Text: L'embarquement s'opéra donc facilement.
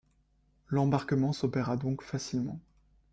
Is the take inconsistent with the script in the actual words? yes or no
no